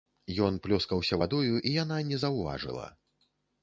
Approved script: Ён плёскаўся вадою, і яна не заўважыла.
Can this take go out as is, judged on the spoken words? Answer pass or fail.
pass